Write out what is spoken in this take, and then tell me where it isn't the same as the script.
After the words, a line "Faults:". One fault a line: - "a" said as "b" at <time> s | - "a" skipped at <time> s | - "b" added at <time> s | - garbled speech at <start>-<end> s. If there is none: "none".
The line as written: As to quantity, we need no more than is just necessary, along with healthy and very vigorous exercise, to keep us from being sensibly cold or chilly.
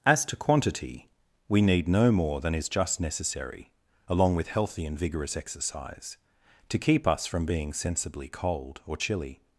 As to quantity, we need no more than is just necessary, along with healthy and vigorous exercise, to keep us from being sensibly cold or chilly.
Faults:
- "very" skipped at 5.0 s